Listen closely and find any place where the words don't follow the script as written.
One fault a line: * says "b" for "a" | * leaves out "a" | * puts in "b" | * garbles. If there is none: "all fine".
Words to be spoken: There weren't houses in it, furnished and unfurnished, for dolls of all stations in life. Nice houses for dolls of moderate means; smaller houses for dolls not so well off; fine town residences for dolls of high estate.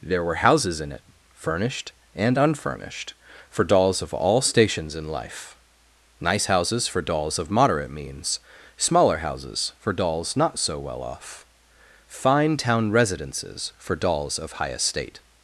* says "were" for "weren't"